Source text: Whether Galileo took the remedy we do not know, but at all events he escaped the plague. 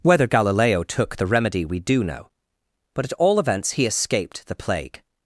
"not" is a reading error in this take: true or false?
true